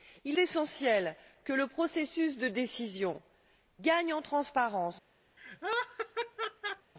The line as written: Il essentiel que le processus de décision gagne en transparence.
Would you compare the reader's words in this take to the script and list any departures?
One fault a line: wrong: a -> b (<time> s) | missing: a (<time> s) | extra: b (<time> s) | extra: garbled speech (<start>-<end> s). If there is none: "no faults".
no faults